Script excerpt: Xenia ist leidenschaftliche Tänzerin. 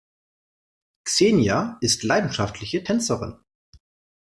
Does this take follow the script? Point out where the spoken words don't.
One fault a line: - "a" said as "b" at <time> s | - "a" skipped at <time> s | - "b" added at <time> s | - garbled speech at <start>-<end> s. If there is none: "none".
none